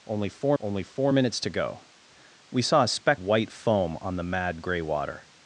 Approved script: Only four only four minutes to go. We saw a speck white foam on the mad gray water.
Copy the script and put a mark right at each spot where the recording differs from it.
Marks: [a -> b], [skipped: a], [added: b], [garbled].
Only four only four minutes to go. We saw a speck white foam on the mad gray water.